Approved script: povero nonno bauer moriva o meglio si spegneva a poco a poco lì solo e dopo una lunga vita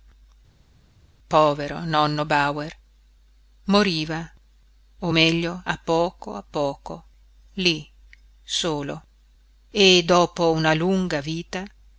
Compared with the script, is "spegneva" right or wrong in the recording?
wrong